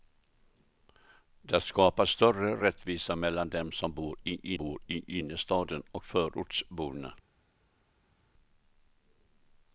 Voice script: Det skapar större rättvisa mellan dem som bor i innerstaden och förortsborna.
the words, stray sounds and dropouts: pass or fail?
fail